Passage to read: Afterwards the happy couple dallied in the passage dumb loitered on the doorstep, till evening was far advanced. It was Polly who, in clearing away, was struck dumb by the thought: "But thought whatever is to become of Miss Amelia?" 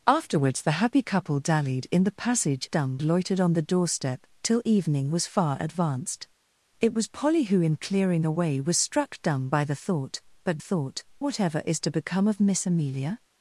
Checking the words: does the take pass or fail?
pass